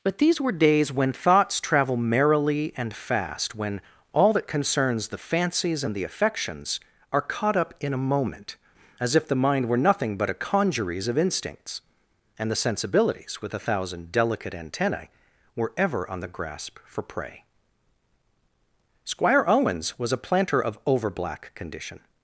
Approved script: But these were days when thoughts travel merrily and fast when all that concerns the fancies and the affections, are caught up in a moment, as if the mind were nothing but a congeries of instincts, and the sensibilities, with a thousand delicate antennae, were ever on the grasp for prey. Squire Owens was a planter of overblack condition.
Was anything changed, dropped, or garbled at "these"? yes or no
no